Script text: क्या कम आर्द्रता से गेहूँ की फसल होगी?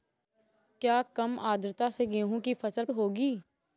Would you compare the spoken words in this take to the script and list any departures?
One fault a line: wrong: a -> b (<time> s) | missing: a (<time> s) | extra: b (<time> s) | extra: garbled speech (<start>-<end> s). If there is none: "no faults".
no faults